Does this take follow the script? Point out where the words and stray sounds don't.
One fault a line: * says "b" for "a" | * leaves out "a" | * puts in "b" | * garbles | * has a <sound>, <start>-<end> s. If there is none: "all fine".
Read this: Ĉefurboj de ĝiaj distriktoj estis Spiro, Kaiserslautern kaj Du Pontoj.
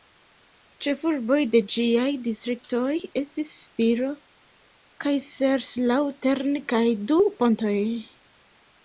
all fine